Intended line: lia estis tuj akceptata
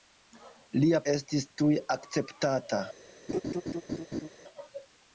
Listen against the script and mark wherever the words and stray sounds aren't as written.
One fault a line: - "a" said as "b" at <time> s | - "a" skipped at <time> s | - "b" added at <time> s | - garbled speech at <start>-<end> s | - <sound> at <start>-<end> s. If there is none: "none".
- laugh at 3.3-4.3 s